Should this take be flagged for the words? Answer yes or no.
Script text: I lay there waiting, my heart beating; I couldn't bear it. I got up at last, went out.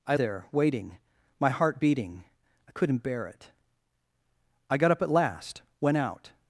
yes